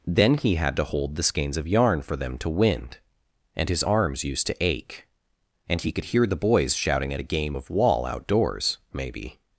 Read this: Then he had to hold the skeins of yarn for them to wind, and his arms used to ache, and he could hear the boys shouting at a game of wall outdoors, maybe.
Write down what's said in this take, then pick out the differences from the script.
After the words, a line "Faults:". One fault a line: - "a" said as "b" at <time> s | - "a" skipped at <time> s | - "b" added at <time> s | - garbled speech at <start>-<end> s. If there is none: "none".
Then he had to hold the skeins of yarn for them to wind, and his arms used to ache, and he could hear the boys shouting at a game of wall outdoors, maybe.
Faults:
none